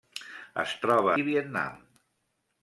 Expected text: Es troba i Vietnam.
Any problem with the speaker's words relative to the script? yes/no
no